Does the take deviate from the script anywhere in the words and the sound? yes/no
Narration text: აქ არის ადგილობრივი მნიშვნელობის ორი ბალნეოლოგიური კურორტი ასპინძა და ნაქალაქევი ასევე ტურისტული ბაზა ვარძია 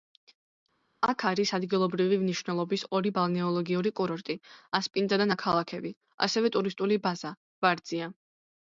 no